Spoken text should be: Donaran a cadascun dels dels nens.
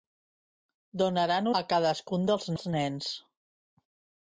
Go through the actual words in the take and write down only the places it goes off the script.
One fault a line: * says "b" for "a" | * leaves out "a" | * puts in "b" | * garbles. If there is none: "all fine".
all fine